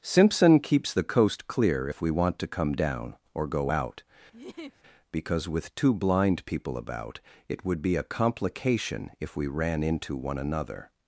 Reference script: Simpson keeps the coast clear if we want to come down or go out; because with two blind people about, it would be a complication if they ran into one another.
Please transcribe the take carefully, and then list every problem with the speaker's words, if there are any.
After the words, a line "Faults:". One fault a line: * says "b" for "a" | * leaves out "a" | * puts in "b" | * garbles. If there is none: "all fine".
Simpson keeps the coast clear if we want to come down or go out; because with two blind people about, it would be a complication if we ran into one another.
Faults:
* says "we" for "they"